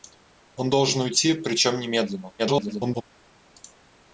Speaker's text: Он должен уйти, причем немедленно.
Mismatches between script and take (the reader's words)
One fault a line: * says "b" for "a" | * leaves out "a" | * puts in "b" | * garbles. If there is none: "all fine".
* garbles